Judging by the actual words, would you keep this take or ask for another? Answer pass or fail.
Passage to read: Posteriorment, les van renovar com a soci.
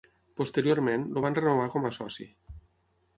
fail